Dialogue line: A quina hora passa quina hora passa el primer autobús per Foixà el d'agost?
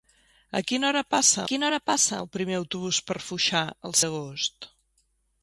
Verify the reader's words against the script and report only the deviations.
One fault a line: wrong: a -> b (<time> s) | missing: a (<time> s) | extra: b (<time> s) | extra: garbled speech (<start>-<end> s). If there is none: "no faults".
no faults